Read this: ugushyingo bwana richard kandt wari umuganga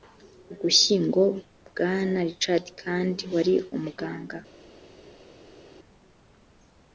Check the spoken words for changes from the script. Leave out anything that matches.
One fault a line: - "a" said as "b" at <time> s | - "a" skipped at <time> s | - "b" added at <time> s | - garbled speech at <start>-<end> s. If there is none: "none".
none